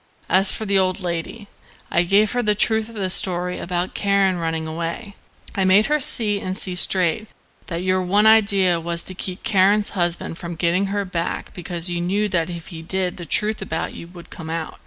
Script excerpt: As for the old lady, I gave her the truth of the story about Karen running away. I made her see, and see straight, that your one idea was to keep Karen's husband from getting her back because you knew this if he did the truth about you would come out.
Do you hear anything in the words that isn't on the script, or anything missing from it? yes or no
yes